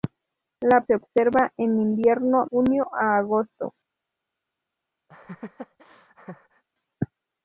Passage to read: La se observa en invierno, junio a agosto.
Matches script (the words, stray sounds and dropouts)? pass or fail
fail